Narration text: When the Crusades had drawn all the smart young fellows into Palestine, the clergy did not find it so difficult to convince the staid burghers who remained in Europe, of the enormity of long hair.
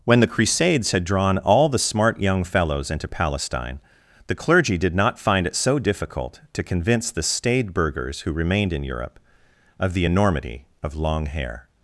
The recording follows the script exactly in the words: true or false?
true